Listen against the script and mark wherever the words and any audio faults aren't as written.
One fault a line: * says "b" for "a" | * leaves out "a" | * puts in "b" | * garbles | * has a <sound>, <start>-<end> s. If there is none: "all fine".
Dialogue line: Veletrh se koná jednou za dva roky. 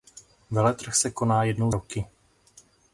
* leaves out "za dva"